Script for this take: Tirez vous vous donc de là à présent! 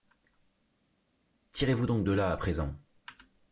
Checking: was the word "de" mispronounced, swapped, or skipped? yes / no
no